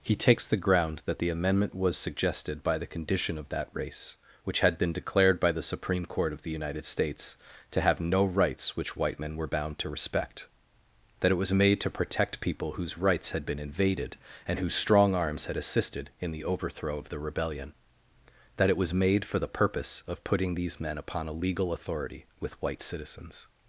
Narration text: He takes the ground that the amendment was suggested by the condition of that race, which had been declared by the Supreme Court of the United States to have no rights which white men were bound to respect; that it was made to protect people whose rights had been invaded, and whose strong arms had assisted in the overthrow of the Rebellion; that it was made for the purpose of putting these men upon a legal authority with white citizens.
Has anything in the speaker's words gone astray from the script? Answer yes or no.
no